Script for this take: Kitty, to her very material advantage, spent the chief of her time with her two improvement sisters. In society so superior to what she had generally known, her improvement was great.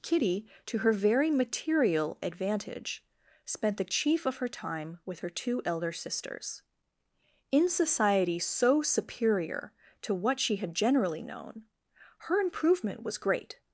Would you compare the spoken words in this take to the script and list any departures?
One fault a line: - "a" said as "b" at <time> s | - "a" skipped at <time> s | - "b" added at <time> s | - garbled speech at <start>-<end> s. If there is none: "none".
- "improvement" said as "elder" at 5.7 s